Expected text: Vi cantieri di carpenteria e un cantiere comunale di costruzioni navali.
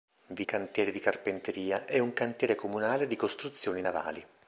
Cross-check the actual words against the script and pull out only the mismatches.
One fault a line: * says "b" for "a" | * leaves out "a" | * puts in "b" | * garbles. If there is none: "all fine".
all fine